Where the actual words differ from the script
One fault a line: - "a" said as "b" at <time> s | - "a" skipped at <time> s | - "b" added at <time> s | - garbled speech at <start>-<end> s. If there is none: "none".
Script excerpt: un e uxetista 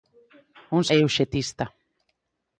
none